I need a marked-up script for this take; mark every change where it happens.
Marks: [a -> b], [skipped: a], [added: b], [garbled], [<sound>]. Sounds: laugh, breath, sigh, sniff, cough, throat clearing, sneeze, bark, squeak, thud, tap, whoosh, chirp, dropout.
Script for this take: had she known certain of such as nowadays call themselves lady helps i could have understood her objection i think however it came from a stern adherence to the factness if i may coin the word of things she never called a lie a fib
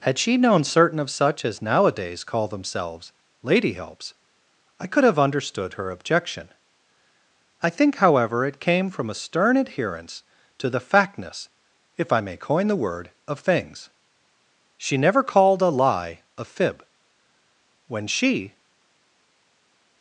had she known certain of such as nowadays call themselves lady helps i could have understood her objection i think however it came from a stern adherence to the factness if i may coin the word of things she never called a lie a fib [added: when she]